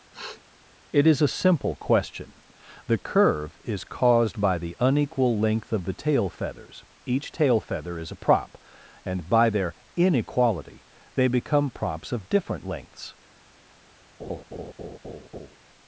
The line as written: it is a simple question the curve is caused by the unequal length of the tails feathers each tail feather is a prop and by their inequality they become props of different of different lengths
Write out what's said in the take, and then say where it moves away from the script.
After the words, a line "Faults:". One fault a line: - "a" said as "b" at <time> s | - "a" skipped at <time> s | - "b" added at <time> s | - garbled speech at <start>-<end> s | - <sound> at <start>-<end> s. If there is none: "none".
it is a simple question the curve is caused by the unequal length of the tail feathers each tail feather is a prop and by their inequality they become props of different lengths
Faults:
- sniff at 0.1-0.4 s
- "tails" said as "tail" at 5.9 s
- "of different" skipped at 12.6 s
- laugh at 14.2-15.6 s